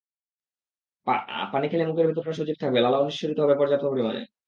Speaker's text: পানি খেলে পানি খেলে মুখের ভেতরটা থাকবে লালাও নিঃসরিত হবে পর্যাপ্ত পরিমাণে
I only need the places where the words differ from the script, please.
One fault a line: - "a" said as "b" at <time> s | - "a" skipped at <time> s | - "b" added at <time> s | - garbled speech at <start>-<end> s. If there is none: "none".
- "পানি খেলে" skipped at 1.9 s
- "সজীব" added at 2.4 s